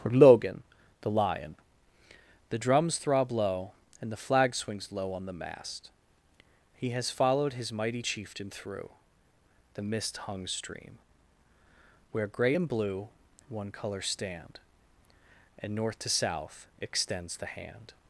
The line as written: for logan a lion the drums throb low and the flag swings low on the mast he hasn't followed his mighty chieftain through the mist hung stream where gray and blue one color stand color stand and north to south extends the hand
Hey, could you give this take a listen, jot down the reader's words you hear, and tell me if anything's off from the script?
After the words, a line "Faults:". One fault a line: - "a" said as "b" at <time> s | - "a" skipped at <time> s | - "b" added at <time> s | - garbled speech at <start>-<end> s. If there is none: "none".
for logan the lion the drums throb low and the flag swings low on the mast he has followed his mighty chieftain through the mist hung stream where gray and blue one color stand and north to south extends the hand
Faults:
- "a" said as "the" at 1.0 s
- "hasn't" said as "has" at 6.9 s
- "color stand" skipped at 14.6 s